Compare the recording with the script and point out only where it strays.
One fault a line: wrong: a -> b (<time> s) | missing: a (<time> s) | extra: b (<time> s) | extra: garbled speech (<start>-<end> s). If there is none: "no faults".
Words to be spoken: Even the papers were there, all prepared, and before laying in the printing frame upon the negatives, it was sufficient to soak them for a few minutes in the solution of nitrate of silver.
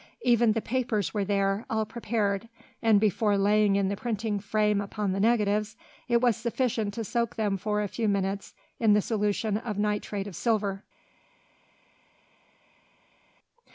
no faults